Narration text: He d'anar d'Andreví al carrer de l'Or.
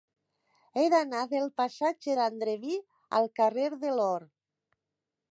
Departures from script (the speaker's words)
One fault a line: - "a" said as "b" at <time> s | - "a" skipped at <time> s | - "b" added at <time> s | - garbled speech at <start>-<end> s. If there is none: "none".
- "del passatge" added at 1.3 s